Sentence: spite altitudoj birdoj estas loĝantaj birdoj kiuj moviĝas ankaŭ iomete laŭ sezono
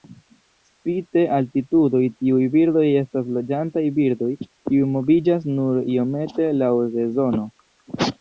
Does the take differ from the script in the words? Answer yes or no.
yes